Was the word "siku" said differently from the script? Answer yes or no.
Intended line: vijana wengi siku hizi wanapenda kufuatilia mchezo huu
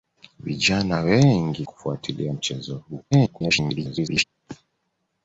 yes